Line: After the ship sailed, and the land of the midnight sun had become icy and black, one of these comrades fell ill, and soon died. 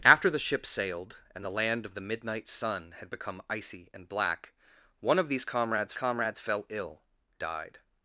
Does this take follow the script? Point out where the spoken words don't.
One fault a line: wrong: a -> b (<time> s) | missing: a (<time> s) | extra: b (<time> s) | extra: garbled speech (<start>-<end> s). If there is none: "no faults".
extra: comrades (5.9 s)
missing: and soon (7.0 s)